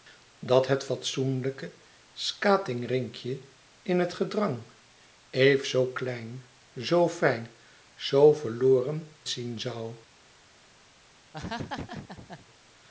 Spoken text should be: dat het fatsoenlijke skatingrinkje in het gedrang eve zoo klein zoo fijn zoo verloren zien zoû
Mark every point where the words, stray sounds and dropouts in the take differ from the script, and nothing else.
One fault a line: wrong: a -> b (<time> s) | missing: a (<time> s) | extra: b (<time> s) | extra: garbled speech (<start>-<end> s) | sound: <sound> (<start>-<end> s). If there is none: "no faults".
sound: laugh (11.3-12.5 s)